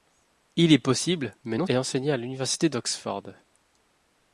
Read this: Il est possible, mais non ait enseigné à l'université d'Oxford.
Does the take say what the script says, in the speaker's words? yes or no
yes